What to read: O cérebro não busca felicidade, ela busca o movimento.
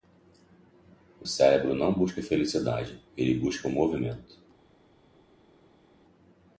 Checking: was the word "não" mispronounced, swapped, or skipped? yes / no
no